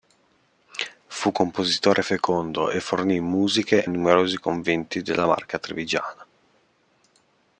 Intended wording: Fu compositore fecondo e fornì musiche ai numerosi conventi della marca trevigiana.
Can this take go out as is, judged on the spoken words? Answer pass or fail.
fail